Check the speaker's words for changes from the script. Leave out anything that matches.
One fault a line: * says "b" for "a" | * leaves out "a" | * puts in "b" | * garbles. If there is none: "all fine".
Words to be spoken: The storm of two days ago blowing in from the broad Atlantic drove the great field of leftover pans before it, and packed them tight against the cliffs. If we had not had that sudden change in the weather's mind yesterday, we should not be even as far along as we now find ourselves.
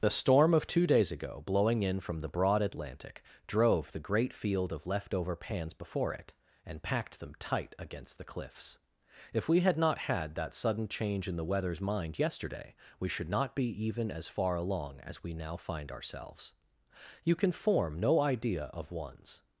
* puts in "You can form no idea of one's"